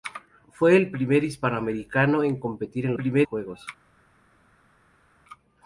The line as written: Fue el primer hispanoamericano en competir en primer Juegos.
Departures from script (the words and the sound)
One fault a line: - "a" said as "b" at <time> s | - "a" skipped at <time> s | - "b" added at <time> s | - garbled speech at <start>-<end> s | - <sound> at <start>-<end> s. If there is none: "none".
none